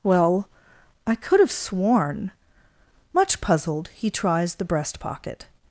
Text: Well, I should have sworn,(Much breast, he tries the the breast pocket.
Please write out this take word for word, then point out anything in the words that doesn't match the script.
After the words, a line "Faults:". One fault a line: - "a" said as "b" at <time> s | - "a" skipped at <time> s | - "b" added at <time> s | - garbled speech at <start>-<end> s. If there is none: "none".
Well, I could have sworn,(Much puzzled, he tries the breast pocket.
Faults:
- "should" said as "could" at 1.1 s
- "breast" said as "puzzled" at 3.4 s
- "the" skipped at 4.7 s